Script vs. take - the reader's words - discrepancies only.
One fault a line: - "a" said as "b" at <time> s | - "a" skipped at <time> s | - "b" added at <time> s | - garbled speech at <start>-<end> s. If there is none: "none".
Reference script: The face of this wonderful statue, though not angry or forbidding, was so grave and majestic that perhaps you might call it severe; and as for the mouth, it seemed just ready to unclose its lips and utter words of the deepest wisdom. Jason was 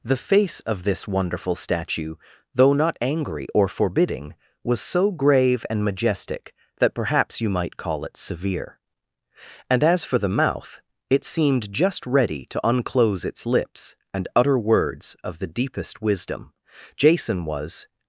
none